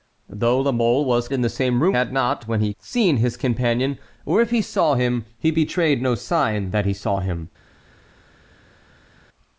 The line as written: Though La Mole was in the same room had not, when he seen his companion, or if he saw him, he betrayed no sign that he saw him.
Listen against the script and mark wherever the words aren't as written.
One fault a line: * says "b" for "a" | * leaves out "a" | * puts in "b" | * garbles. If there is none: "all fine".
all fine